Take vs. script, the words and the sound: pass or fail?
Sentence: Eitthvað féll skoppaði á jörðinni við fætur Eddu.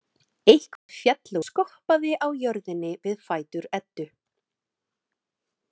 fail